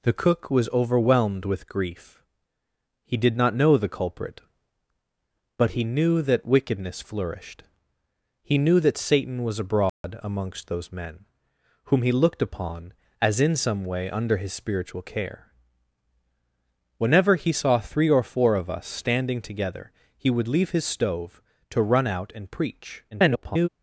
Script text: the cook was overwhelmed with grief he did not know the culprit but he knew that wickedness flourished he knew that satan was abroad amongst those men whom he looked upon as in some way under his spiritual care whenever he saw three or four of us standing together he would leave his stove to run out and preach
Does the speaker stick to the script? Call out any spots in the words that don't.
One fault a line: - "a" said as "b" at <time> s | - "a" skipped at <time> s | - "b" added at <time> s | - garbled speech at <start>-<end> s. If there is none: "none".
- garbled speech at 23.1-23.7 s